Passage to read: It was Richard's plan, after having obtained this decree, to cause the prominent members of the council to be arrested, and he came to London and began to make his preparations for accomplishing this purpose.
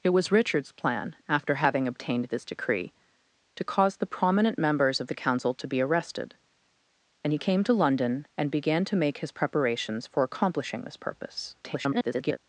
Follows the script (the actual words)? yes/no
no